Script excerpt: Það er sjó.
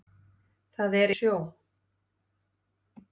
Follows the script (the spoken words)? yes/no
yes